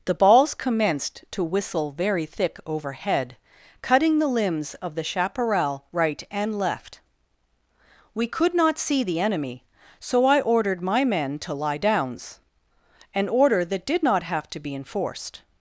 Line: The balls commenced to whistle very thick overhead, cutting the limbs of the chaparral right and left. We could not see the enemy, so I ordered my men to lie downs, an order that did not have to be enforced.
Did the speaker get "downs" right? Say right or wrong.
right